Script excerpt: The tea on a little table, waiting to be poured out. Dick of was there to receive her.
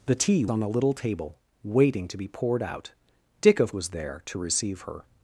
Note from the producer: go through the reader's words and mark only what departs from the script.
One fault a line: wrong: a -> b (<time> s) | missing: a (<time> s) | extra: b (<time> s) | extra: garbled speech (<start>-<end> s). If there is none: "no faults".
no faults